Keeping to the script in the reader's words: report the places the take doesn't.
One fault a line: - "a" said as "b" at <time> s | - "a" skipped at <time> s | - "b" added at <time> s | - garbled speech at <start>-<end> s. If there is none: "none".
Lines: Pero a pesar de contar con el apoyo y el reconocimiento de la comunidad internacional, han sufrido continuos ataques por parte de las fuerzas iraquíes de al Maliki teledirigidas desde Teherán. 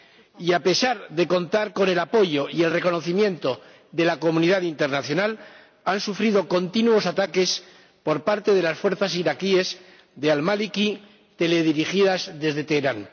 - "Pero" said as "Y" at 0.4 s